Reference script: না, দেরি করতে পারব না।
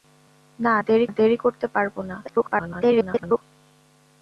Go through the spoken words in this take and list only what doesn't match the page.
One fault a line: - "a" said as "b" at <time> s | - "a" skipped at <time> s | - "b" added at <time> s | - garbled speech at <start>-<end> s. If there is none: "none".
- "দেরি" added at 1.1 s
- garbled speech at 2.2-3.4 s